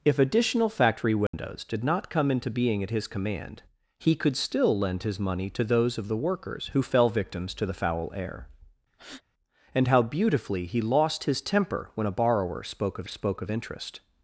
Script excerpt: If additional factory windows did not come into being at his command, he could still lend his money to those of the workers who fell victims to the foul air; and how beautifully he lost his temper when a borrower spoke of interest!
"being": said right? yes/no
yes